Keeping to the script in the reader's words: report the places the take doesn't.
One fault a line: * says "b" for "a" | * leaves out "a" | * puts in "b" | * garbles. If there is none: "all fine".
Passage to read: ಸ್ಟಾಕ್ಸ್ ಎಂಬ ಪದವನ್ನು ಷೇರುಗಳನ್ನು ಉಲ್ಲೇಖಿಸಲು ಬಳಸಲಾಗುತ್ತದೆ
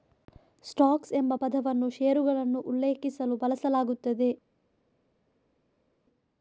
all fine